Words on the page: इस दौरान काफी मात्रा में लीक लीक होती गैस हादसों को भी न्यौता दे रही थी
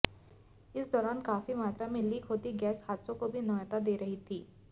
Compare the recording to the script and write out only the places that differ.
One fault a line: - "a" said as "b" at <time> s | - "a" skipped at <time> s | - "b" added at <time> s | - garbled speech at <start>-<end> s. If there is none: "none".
- "लीक" skipped at 2.2 s